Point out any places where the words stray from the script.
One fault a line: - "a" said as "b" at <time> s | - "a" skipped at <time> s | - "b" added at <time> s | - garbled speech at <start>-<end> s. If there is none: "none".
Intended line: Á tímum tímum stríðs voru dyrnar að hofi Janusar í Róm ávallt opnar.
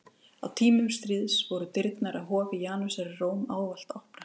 - "tímum" skipped at 0.9 s